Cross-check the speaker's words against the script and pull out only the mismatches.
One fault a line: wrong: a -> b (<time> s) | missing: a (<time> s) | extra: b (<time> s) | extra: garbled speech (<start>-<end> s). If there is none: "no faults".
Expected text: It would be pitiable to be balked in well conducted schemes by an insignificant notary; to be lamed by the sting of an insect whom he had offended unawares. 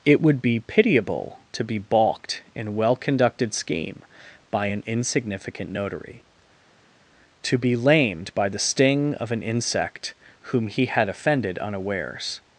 wrong: schemes -> scheme (3.5 s)